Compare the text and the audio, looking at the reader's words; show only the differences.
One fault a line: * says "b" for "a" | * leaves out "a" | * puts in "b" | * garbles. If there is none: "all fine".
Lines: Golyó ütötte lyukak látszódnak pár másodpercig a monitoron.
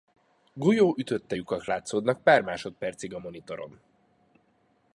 all fine